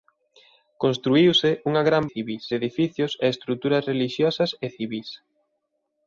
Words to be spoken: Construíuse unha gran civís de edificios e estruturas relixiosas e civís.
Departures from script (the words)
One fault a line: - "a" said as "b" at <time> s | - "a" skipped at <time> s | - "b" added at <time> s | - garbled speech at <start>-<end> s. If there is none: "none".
none